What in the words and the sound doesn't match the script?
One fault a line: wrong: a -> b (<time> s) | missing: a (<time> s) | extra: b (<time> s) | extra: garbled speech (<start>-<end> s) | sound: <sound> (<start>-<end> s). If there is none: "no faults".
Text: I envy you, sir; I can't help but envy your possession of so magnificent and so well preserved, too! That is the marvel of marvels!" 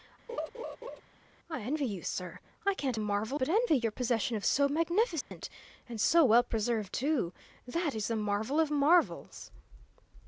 sound: laugh (0.3-1.0 s)
wrong: help -> marvel (3.0 s)
sound: dropout (5.2-5.3 s)